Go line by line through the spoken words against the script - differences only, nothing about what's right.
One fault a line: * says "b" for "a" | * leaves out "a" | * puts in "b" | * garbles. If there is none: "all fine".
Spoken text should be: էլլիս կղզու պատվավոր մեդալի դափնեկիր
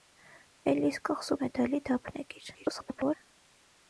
* leaves out "պատվավոր"
* garbles